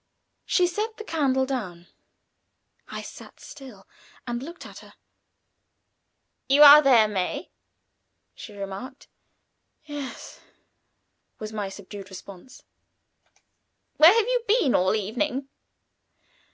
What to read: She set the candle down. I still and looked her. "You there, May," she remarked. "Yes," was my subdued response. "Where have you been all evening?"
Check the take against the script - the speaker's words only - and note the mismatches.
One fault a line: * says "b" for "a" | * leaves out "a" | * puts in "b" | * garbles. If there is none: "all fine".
* puts in "sat"
* puts in "at"
* puts in "are"